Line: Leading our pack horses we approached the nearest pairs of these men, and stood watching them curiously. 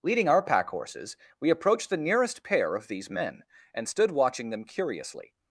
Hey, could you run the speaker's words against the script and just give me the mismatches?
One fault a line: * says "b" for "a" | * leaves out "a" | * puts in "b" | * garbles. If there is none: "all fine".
* says "pair" for "pairs"